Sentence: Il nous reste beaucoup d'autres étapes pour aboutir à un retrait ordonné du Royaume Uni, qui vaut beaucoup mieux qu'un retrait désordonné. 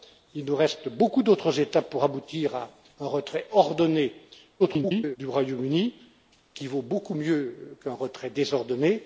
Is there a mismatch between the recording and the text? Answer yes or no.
yes